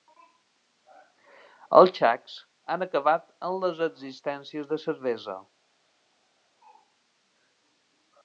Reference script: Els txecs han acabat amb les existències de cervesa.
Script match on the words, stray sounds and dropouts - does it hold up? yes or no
yes